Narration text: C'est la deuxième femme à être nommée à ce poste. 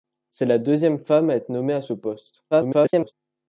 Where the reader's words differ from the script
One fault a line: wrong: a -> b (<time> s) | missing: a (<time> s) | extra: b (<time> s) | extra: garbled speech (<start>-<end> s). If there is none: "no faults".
extra: garbled speech (2.5-3.1 s)